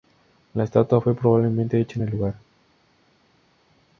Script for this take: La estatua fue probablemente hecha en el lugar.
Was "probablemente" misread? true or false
false